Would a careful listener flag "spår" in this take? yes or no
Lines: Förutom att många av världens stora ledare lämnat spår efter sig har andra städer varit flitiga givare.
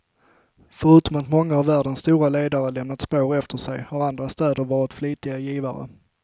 no